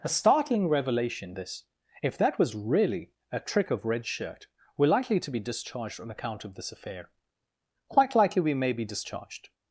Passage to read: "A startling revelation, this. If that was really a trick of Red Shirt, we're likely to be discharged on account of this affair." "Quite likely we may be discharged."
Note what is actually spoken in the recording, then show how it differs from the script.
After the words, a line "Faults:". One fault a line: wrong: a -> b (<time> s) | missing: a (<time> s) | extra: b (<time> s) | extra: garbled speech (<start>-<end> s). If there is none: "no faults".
"A startling revelation, this. If that was really a trick of Red Shirt, we're likely to be discharged on account of this affair." "Quite likely we may be discharged."
Faults:
no faults